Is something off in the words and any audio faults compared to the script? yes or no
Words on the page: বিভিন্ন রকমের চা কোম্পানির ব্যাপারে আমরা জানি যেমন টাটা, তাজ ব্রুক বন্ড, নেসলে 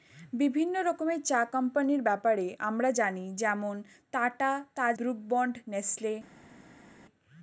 no